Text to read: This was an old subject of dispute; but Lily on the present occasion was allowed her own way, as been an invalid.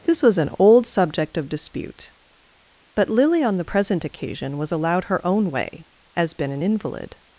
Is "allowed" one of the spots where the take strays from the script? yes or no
no